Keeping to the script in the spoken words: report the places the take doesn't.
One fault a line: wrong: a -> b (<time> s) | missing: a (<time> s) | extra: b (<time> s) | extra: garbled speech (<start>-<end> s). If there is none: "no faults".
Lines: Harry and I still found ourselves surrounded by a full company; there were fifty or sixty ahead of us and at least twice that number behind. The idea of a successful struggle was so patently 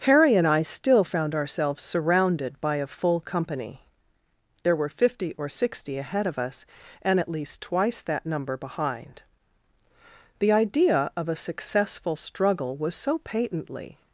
no faults